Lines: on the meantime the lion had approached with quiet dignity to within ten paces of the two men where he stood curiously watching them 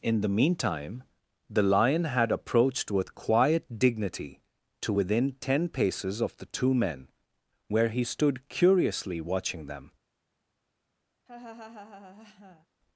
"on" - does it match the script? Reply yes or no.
no